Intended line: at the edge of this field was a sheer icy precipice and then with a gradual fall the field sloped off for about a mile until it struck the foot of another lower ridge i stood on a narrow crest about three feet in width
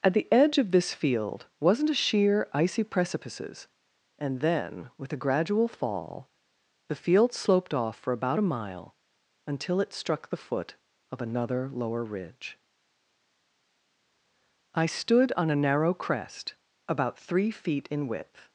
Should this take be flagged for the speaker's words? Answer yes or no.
yes